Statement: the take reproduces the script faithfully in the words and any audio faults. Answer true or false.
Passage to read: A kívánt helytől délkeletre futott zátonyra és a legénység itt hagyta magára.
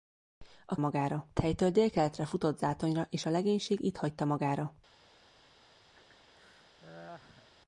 false